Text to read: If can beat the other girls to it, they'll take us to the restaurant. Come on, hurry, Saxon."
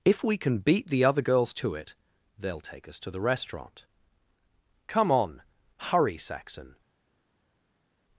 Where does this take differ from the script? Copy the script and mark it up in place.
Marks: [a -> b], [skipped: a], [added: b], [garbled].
If [added: we] can beat the other girls to it, they'll take us to the restaurant. Come on, hurry, Saxon."